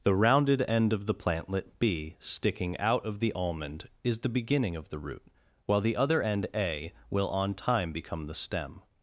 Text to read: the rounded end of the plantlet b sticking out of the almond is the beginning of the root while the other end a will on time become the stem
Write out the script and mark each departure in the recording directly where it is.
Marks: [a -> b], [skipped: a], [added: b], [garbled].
the rounded end of the plantlet b sticking out of the almond is the beginning of the root while the other end a will on time become the stem